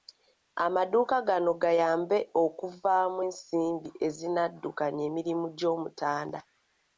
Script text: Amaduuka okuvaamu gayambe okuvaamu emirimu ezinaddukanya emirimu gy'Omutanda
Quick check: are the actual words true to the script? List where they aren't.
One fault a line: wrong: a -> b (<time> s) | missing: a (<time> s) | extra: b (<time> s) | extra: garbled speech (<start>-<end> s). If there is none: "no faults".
wrong: okuvaamu -> gano (1.3 s)
wrong: emirimu -> ensimbi (3.3 s)